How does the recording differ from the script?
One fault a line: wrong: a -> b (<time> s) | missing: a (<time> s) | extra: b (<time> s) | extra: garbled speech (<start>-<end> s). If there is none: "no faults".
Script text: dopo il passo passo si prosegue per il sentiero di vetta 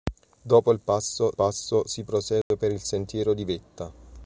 no faults